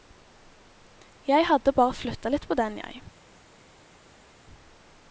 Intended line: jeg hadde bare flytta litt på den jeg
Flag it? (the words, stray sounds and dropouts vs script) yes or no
no